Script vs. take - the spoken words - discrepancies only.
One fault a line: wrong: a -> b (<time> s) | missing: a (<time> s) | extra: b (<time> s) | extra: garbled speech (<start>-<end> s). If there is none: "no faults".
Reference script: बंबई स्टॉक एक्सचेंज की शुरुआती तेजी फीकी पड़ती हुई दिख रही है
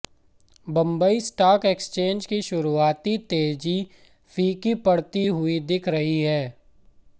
no faults